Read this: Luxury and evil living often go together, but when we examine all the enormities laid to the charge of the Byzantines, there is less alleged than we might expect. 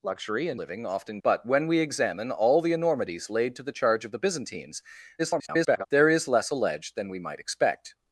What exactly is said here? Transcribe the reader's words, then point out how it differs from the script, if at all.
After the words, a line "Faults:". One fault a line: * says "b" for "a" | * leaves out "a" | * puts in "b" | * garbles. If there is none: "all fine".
Luxury and living often but when we examine all the enormities laid to the charge of the Byzantines, [garbled] there is less alleged than we might expect.
Faults:
* leaves out "evil"
* leaves out "go together"
* garbles